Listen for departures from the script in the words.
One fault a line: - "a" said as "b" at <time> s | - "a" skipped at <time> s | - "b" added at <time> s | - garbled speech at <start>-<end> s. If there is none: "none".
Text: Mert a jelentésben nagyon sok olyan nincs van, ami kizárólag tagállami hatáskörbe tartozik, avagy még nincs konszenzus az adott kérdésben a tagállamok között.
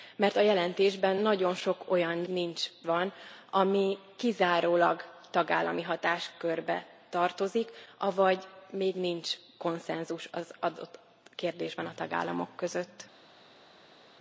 none